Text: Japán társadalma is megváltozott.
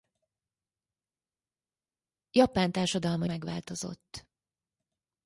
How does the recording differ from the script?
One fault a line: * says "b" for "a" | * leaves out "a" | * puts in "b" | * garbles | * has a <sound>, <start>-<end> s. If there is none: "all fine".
* leaves out "is"